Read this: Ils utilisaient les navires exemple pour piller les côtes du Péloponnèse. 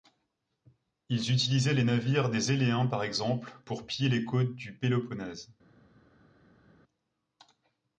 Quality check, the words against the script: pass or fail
fail